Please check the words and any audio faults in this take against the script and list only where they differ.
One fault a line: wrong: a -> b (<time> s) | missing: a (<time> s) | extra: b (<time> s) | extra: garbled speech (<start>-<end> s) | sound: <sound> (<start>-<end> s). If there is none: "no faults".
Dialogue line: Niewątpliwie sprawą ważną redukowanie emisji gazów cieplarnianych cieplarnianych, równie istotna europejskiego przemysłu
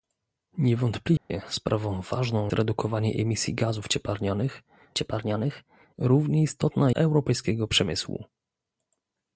sound: dropout (1.2-1.3 s)